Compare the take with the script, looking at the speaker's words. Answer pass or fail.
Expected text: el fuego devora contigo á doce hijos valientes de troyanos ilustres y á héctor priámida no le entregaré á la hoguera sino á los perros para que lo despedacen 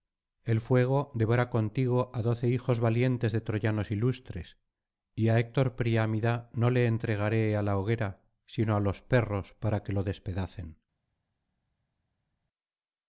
pass